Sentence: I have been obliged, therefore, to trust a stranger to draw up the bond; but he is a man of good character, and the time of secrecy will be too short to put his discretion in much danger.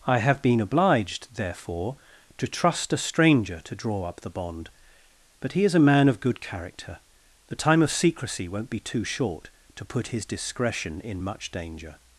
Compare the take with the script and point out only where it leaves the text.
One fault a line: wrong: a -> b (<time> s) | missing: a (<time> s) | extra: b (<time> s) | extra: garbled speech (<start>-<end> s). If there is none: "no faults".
missing: and (7.0 s)
wrong: will -> won't (8.5 s)